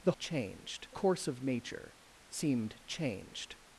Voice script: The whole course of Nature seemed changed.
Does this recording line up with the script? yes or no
no